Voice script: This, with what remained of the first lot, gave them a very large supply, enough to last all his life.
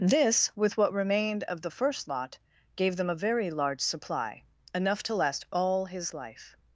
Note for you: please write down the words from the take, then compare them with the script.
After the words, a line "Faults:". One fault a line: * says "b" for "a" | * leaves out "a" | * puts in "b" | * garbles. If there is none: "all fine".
This, with what remained of the first lot, gave them a very large supply, enough to last all his life.
Faults:
all fine